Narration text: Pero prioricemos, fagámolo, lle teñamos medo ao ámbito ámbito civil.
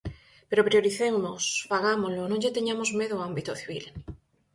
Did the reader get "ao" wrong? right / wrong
right